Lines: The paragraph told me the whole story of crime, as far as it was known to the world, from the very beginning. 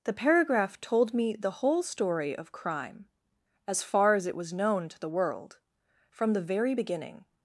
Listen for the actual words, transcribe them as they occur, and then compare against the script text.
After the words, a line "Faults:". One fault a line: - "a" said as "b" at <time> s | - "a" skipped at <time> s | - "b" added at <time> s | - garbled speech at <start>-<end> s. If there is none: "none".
The paragraph told me the whole story of crime, as far as it was known to the world, from the very beginning.
Faults:
none